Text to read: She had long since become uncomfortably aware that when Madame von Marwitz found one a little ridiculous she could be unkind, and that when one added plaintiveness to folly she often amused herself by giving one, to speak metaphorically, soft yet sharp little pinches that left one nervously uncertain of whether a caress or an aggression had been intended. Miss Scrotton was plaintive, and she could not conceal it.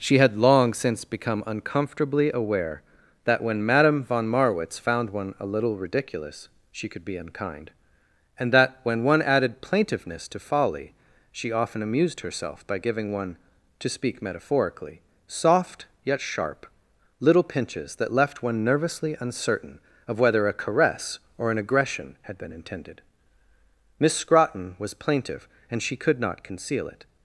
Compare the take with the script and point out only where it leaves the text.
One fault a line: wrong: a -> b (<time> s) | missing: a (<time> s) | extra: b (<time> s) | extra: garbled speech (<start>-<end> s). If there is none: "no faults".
no faults